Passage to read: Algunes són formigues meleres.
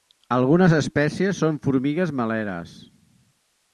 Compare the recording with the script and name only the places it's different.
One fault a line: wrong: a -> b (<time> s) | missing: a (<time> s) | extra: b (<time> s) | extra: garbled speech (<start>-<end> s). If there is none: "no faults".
extra: espècies (0.8 s)